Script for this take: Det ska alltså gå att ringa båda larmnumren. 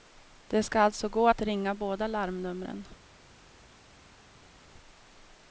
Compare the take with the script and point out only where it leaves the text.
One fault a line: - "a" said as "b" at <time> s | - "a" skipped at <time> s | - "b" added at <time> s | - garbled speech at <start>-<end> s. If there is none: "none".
none